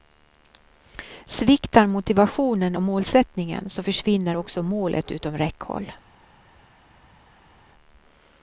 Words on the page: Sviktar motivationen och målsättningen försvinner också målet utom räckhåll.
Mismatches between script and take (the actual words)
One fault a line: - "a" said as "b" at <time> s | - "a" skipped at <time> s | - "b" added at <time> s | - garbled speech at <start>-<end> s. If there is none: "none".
- "så" added at 3.7 s